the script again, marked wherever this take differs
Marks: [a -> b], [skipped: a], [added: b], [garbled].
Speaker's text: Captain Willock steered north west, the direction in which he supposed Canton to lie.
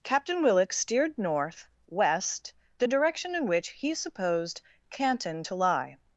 Captain Willock steered north west, the direction in which he supposed Canton to lie.